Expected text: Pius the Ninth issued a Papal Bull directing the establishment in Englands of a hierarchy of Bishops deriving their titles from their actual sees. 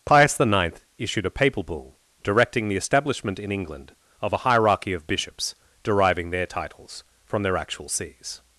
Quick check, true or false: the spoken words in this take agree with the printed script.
false